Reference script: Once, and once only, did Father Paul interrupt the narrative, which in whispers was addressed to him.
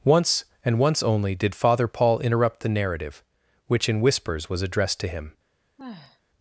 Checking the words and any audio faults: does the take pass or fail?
fail